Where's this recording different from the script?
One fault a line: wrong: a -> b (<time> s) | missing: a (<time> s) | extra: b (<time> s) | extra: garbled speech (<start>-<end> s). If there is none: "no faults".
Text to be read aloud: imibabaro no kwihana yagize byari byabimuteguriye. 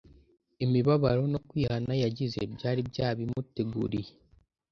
no faults